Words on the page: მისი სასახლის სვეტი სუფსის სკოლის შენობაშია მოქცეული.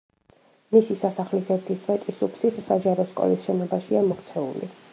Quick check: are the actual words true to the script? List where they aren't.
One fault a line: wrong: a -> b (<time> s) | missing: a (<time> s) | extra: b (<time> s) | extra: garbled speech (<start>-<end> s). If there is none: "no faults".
extra: ერთი (1.6 s)
extra: საჯარო (2.7 s)